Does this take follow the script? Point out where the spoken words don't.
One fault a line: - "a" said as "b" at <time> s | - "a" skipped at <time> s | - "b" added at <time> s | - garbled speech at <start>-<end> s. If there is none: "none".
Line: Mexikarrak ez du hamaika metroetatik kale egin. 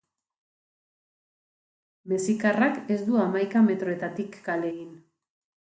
none